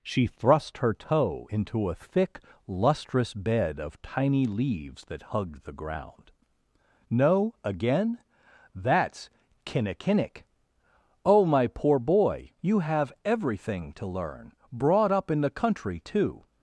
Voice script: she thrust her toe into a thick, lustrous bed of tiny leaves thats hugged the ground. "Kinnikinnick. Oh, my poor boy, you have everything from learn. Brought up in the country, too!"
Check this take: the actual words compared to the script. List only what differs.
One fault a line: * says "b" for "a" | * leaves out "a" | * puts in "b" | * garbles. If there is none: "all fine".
* says "that" for "thats"
* puts in "No again That's"
* says "to" for "from"